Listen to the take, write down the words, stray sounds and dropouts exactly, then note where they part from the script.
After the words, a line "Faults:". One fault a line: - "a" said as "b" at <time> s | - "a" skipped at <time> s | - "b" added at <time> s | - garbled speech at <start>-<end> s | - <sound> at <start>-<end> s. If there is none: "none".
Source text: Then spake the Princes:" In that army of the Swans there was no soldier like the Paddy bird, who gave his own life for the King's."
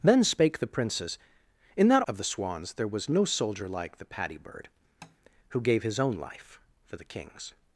Then spake the Princes:" In that of the Swans there was no soldier like the Paddy bird, who gave his own life for the King's."
Faults:
- "army" skipped at 2.0 s
- tap at 5.0-5.2 s